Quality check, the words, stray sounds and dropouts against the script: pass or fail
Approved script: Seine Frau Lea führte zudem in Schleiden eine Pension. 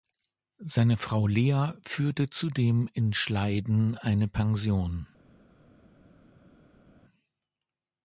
pass